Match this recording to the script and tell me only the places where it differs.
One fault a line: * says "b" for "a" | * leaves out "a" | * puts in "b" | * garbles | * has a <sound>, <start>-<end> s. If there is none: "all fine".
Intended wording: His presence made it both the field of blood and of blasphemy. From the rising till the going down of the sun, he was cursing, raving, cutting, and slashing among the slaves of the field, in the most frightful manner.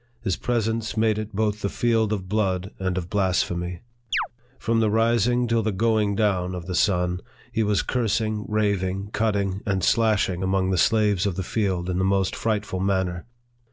* has a chirp, 4.1-4.3 s